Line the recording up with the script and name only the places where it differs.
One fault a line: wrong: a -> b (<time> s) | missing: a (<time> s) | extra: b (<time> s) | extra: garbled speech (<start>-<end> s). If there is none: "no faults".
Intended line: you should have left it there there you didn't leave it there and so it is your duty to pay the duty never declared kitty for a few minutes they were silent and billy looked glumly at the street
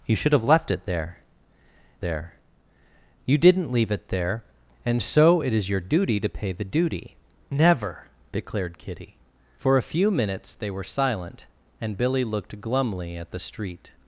no faults